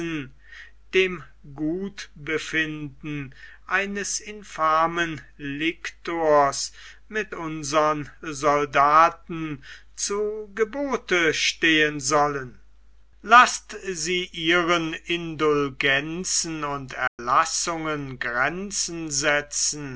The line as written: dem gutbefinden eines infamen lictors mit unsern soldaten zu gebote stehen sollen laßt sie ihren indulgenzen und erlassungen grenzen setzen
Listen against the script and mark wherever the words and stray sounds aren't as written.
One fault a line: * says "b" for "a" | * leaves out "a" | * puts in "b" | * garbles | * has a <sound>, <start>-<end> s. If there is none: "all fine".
* has a dropout, 17.1-17.2 s